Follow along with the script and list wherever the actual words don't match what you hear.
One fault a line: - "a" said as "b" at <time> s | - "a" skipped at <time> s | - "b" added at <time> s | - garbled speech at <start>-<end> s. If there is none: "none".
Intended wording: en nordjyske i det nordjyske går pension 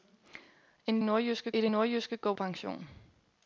none